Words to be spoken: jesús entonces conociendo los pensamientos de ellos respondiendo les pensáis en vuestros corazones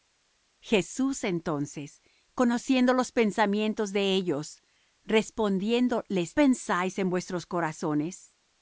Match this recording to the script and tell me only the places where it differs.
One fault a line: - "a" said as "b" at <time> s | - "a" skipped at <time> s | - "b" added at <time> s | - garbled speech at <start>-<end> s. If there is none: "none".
none